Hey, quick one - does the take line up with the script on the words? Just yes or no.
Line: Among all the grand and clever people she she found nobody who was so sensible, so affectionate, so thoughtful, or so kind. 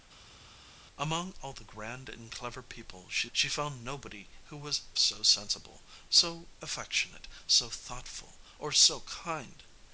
yes